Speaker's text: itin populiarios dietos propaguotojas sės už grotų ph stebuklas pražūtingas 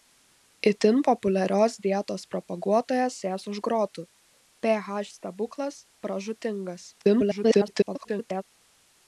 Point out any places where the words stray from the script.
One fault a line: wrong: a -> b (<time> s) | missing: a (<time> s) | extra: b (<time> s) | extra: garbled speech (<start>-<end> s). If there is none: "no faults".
extra: garbled speech (7.0-8.4 s)